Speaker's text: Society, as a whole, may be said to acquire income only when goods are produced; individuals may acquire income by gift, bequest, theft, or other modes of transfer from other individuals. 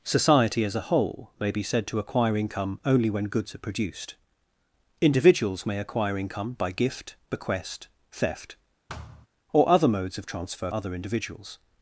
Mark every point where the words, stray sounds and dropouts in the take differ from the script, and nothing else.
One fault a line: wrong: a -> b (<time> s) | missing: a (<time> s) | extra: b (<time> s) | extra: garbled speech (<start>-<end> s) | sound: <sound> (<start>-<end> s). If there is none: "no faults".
sound: thud (8.9-9.3 s)
missing: from (10.7 s)